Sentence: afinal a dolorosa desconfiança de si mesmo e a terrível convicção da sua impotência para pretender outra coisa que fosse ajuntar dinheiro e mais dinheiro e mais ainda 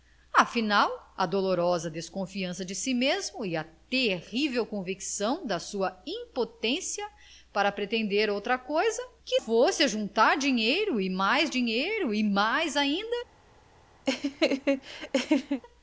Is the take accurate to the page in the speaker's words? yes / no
yes